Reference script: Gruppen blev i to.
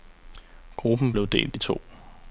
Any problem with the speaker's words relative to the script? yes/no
yes